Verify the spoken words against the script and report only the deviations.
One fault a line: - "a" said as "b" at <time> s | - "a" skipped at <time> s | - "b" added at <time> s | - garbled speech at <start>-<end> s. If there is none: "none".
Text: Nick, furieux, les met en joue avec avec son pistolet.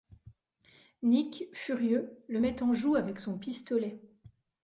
- "les" said as "le" at 2.3 s
- "avec" skipped at 3.2 s